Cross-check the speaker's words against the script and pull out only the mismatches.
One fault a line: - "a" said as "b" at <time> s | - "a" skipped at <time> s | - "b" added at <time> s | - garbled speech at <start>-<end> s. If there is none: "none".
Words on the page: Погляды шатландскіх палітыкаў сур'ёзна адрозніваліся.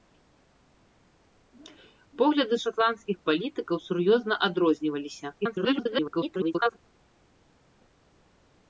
- garbled speech at 5.4-6.8 s